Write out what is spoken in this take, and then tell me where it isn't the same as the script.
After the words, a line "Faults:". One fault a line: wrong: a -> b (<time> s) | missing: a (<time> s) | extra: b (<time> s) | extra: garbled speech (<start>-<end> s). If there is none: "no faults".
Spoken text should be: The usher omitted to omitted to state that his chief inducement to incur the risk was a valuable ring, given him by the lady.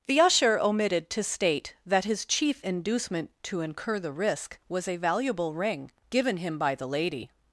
The usher omitted to state that his chief inducement to incur the risk was a valuable ring, given him by the lady.
Faults:
missing: omitted to (1.2 s)